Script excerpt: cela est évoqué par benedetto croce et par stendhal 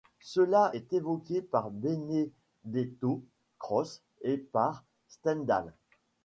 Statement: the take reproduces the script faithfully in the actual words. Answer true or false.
true